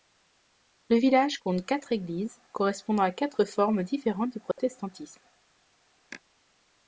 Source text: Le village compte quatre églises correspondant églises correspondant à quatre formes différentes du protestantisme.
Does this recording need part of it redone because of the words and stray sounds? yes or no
yes